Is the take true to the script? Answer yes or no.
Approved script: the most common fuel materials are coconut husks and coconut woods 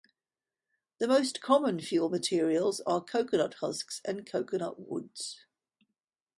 yes